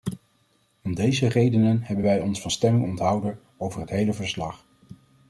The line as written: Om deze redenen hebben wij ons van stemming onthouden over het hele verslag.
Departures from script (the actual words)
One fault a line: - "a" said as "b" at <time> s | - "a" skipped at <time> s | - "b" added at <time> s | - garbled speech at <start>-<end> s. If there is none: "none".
none